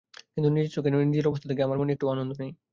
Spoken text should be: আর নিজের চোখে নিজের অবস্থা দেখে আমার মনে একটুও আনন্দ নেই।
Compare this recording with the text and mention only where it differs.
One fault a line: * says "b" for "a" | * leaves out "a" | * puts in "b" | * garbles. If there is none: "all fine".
* says "কিন্তু" for "আর"